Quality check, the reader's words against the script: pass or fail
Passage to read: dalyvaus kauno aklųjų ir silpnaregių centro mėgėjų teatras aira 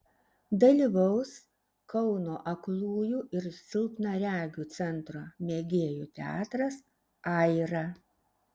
pass